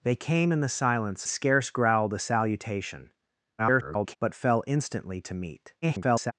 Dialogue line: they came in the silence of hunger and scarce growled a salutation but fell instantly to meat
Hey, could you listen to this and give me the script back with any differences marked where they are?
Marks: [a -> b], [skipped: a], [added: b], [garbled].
they came in the silence [skipped: of hunger and] scarce growled a salutation [garbled] but fell instantly to meat [garbled]